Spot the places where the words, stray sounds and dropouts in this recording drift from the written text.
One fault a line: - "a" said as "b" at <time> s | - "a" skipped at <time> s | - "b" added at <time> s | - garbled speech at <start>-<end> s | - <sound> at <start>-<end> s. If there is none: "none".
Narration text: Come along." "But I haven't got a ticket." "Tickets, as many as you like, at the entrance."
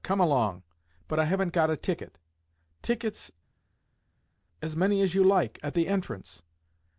none